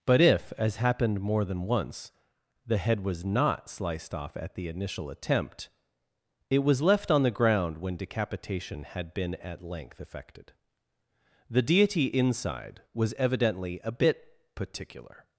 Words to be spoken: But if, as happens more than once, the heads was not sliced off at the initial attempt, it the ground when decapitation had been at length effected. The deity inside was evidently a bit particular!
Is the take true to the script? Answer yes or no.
no